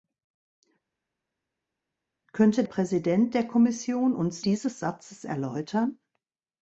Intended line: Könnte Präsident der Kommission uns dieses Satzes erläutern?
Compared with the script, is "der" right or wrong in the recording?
right